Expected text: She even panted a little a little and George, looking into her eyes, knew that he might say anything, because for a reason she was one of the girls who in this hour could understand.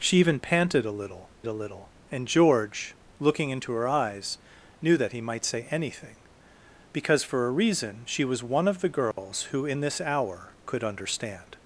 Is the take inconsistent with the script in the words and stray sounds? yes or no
yes